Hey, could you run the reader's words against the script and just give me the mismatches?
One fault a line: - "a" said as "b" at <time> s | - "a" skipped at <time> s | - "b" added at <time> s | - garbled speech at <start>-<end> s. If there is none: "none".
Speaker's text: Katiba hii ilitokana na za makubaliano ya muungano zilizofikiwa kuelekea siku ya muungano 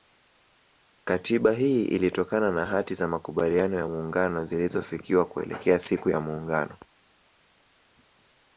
- "hati" added at 2.6 s